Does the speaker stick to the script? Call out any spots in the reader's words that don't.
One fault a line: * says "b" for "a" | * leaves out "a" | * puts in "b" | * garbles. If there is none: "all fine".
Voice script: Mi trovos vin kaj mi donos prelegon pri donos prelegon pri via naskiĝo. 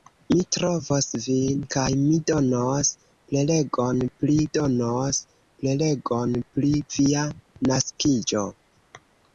all fine